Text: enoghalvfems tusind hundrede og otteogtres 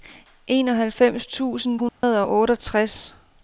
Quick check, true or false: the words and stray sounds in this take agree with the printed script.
false